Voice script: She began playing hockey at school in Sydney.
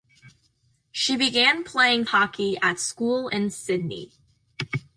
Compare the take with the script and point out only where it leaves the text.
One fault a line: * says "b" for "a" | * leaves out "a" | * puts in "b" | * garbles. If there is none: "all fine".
all fine